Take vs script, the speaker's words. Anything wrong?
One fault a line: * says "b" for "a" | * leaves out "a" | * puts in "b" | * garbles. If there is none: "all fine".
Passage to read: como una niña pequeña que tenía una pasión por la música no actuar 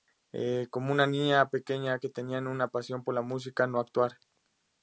all fine